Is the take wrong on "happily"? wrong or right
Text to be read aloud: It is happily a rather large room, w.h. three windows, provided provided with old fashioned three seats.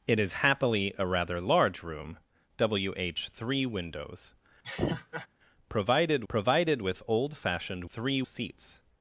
right